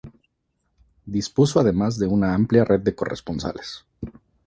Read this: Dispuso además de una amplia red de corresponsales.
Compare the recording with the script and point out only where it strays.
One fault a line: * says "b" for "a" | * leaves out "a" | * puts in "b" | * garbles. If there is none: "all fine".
all fine